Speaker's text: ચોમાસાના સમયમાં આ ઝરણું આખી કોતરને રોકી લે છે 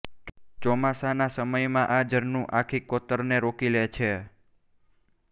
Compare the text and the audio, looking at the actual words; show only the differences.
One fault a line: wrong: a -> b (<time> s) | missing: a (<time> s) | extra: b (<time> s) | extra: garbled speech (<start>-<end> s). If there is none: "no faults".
no faults